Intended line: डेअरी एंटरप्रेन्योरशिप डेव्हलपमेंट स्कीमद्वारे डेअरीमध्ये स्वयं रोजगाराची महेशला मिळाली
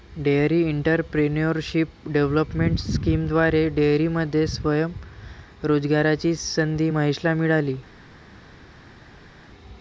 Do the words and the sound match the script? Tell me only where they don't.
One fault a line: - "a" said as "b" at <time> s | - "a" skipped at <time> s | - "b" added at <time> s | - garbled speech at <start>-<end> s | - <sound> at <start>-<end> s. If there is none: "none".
- "संधी" added at 6.4 s